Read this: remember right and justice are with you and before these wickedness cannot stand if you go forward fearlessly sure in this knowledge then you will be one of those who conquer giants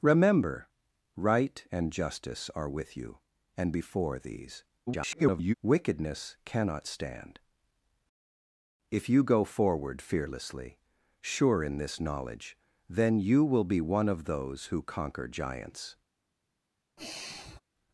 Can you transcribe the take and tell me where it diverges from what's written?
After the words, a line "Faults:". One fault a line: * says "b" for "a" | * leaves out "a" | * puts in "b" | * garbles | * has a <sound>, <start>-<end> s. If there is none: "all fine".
remember right and justice are with you and before these [garbled] wickedness cannot stand if you go forward fearlessly sure in this knowledge then you will be one of those who conquer giants
Faults:
* garbles
* has a sigh, 17.0-17.6 s